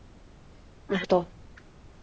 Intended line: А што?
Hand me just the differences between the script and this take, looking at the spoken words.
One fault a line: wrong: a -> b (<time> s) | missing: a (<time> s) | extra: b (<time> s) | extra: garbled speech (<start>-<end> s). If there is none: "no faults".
no faults